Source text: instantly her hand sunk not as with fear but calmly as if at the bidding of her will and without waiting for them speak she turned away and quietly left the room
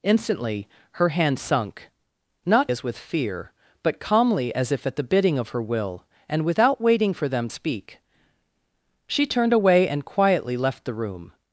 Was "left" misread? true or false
false